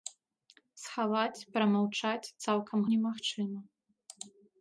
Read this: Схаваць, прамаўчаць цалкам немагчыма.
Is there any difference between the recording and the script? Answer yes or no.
no